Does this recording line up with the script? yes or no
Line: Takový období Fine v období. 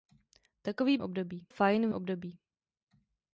yes